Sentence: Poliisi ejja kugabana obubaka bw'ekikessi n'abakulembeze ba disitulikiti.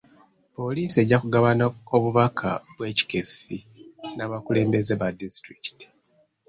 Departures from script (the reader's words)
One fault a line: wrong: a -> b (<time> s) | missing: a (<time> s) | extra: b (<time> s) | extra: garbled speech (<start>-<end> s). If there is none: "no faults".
no faults